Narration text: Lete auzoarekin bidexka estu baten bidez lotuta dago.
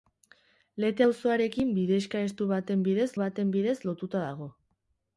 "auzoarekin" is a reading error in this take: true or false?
false